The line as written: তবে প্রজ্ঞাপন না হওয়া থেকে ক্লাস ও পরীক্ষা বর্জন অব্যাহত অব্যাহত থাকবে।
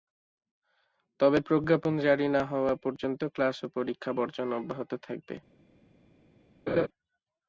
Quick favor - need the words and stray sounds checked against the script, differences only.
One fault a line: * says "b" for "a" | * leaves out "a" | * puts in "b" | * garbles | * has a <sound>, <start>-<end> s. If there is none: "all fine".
* puts in "জারি"
* says "পর্যন্ত" for "থেকে"
* leaves out "অব্যাহত"
* has a laugh, 6.7-6.9 s